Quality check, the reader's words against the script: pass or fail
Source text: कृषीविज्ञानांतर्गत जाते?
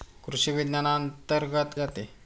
pass